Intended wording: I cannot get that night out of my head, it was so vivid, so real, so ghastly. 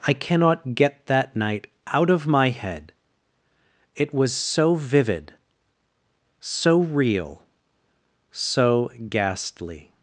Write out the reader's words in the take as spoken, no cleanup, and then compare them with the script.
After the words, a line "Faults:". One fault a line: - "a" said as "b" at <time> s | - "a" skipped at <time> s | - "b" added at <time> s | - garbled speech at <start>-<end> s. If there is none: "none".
I cannot get that night out of my head, it was so vivid, so real, so ghastly.
Faults:
none